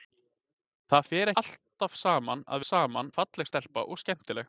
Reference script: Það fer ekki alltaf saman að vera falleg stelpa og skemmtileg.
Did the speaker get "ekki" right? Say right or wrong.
wrong